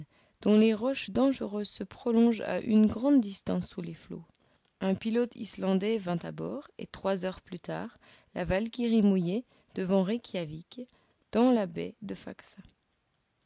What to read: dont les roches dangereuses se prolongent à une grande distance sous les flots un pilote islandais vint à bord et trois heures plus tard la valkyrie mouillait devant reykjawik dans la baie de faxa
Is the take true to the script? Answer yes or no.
yes